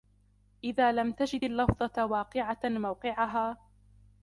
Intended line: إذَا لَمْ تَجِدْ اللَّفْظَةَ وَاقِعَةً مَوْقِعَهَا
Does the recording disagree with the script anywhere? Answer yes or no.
no